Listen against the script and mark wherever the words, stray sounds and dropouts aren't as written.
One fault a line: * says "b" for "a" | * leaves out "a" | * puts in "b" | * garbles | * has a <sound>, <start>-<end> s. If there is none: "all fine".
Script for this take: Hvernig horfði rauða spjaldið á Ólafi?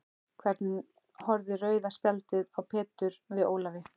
* puts in "Pétur við"